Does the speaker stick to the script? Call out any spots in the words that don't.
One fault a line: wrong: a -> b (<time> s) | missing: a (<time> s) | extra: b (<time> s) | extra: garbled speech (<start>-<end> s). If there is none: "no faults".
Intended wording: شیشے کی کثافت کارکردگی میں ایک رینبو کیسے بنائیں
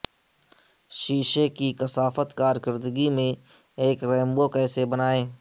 no faults